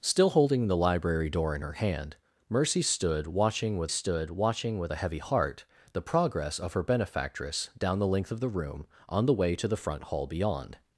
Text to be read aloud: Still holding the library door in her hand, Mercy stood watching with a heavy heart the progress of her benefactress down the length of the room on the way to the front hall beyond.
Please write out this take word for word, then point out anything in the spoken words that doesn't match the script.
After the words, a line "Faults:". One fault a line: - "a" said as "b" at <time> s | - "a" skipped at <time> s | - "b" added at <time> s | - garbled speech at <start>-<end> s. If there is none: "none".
Still holding the library door in her hand, Mercy stood watching with stood watching with a heavy heart the progress of her benefactress down the length of the room on the way to the front hall beyond.
Faults:
- "stood watching with" added at 3.9 s